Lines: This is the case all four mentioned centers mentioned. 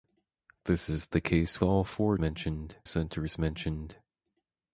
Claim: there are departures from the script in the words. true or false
false